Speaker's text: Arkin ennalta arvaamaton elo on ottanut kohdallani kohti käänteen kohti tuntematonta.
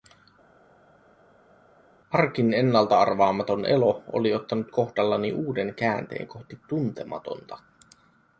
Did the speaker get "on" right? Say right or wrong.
wrong